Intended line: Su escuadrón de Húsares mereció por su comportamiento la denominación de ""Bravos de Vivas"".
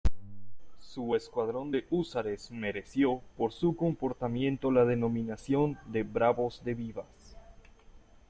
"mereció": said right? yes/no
yes